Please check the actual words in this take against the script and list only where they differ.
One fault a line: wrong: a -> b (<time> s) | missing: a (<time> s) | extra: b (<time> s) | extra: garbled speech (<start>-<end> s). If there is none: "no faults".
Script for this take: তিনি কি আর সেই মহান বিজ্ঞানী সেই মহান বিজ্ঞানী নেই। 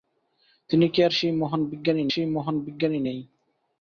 no faults